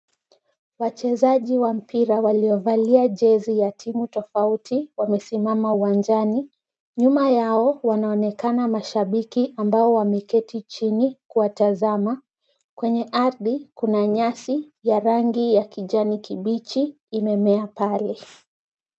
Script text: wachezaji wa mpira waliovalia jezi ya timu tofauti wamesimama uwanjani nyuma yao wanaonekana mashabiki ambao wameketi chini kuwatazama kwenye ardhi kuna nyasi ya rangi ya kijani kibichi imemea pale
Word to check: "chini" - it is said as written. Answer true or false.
true